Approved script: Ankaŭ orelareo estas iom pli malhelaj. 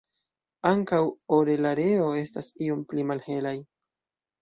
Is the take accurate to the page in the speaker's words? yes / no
yes